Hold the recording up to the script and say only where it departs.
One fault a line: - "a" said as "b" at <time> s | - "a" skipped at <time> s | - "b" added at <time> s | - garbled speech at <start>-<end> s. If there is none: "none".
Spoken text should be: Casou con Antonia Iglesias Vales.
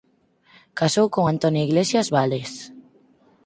none